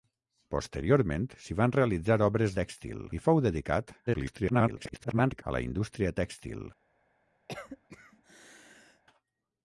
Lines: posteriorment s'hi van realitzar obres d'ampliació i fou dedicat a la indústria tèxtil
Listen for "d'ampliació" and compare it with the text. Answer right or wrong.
wrong